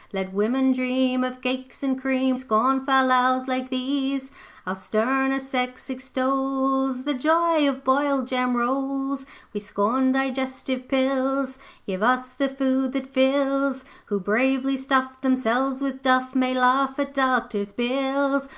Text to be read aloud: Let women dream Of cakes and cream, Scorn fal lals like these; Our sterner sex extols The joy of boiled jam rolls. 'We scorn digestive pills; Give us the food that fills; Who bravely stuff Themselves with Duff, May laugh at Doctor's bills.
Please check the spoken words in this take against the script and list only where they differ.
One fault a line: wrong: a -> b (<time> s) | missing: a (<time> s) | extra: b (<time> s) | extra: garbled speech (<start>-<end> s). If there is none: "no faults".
no faults